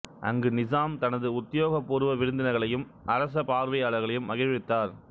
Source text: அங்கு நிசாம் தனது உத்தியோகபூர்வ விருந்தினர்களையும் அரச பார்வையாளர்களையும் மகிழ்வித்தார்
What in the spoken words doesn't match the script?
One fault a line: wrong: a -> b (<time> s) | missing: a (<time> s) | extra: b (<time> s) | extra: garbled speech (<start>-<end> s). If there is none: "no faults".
no faults